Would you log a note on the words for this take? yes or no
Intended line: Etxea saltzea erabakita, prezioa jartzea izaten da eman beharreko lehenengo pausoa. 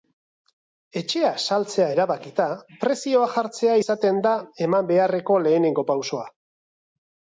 no